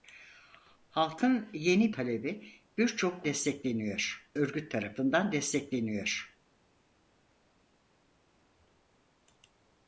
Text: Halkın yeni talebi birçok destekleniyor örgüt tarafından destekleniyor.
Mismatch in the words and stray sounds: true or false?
false